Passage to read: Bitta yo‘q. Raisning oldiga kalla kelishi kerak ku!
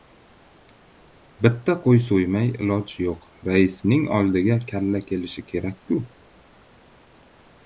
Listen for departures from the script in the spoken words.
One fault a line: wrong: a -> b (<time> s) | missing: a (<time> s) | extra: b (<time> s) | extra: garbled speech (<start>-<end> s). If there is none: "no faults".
extra: qo‘y so‘ymay iloj (1.8 s)